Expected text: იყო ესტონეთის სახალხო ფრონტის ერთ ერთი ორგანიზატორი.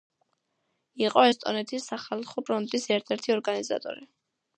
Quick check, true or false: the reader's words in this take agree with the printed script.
true